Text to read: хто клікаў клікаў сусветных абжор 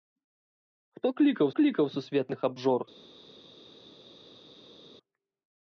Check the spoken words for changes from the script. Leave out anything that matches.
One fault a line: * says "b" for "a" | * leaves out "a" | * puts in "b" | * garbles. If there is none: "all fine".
all fine